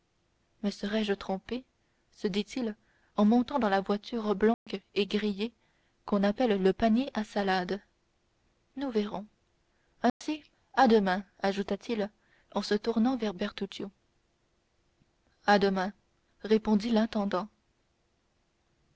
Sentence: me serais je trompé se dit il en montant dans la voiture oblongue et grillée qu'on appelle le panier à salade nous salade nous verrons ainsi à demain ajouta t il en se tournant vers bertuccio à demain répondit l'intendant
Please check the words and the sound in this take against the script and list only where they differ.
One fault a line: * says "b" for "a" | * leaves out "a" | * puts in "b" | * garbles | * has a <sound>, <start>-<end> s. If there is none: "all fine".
* has a dropout, 4.5-4.7 s
* leaves out "salade nous"
* has a dropout, 10.1-10.2 s